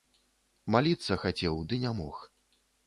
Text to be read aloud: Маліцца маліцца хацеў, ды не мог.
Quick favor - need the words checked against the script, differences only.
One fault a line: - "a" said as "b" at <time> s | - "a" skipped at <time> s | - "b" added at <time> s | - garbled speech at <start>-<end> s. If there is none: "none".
- "маліцца" skipped at 1.2 s